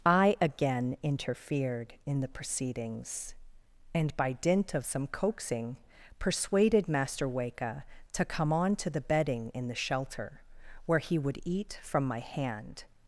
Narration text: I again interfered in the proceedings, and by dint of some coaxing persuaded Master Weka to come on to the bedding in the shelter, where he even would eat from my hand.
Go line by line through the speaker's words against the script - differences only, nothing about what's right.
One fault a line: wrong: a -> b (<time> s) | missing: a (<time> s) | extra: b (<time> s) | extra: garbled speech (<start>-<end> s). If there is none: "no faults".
missing: even (11.2 s)